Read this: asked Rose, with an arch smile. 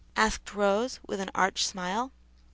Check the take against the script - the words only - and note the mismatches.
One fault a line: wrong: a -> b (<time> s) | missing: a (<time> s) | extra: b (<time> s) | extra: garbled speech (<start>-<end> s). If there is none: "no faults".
no faults